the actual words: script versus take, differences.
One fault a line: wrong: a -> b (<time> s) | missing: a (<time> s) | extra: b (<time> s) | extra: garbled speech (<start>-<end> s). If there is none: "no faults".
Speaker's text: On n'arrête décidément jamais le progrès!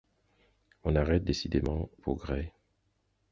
missing: jamais le (1.9 s)